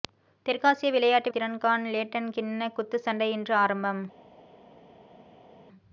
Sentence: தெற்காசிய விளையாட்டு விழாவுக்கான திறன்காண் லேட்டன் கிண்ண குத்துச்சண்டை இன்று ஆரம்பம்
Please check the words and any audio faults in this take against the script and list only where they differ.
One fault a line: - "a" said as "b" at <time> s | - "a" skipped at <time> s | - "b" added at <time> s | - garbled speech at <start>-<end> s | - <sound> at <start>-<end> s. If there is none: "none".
- "விழாவுக்கான" skipped at 1.3 s